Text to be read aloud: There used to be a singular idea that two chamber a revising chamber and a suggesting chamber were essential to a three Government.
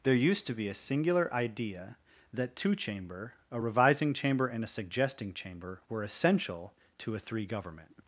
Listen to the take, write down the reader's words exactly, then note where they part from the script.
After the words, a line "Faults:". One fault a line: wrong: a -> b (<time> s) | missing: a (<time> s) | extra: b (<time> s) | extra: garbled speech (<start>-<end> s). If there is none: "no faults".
There used to be a singular idea that two chamber a revising chamber and a suggesting chamber were essential to a three Government.
Faults:
no faults